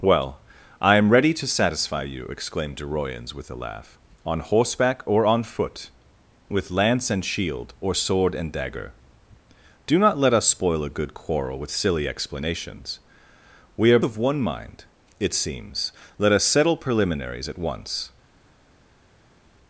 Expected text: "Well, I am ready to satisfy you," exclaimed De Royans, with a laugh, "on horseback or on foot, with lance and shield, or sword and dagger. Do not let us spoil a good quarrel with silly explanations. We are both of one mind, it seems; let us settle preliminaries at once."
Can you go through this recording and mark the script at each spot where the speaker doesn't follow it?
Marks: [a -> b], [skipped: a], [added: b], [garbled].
"Well, I am ready to satisfy you," exclaimed De Royans, with a laugh, "on horseback or on foot, with lance and shield, or sword and dagger. Do not let us spoil a good quarrel with silly explanations. We are [skipped: both] of one mind, it seems; let us settle preliminaries at once."